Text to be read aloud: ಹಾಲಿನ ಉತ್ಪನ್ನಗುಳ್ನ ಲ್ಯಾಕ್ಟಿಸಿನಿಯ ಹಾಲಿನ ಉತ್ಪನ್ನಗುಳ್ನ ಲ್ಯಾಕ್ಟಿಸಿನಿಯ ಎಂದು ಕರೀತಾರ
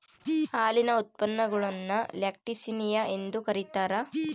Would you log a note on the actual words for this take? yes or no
yes